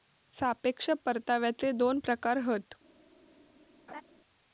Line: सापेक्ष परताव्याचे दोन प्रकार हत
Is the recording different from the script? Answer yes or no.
no